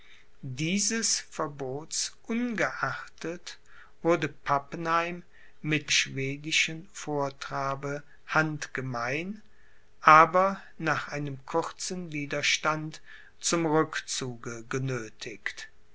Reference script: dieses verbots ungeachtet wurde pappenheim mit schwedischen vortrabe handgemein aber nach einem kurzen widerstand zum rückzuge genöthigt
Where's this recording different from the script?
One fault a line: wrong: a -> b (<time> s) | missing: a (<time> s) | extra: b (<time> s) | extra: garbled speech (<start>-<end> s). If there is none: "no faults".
no faults